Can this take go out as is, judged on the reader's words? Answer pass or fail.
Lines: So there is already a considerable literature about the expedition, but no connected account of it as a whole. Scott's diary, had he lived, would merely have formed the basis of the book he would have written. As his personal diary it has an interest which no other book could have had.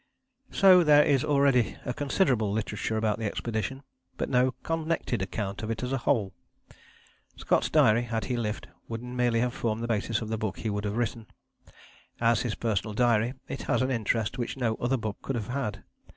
pass